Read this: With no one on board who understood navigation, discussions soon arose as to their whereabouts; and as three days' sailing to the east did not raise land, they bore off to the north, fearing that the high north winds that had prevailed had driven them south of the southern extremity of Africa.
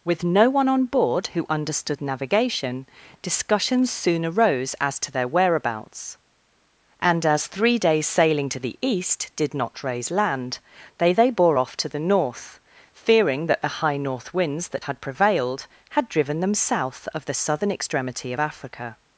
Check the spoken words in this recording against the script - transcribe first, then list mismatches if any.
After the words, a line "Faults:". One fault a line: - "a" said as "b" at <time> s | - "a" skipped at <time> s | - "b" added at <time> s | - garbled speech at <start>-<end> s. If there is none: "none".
With no one on board who understood navigation, discussions soon arose as to their whereabouts; and as three days' sailing to the east did not raise land, they they bore off to the north, fearing that the high north winds that had prevailed had driven them south of the southern extremity of Africa.
Faults:
- "they" added at 11.1 s